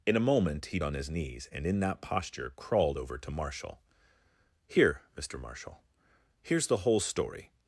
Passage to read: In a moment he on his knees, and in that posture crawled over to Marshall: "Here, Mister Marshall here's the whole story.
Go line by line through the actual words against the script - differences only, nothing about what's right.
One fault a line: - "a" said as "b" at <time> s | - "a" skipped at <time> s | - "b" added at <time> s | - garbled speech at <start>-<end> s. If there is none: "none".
none